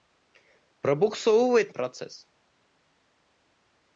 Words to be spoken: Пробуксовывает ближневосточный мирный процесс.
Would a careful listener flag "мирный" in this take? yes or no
yes